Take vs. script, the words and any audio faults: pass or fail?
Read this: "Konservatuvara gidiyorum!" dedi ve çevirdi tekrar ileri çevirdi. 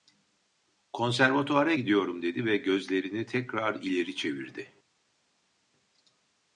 fail